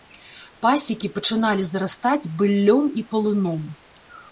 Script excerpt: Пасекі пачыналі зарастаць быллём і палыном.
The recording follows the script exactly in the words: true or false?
true